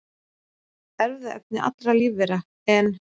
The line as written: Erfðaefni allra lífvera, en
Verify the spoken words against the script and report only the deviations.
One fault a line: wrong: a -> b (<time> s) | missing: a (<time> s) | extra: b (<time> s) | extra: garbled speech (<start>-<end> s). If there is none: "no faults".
no faults